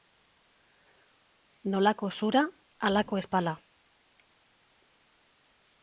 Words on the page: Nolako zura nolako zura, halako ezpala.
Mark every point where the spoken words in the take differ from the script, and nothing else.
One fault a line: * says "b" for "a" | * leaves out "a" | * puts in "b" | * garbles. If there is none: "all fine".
* leaves out "nolako zura"